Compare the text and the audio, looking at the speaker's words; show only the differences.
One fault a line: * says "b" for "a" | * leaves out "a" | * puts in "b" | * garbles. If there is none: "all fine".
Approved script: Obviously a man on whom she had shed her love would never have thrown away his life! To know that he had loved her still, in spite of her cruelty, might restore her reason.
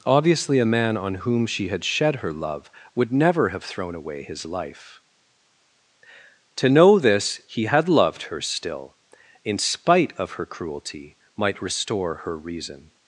* says "this" for "that"